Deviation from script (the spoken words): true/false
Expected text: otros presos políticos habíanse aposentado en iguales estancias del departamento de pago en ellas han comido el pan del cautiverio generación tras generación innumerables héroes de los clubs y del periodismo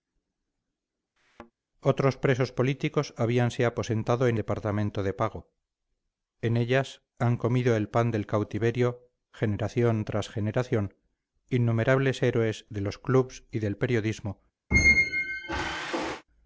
true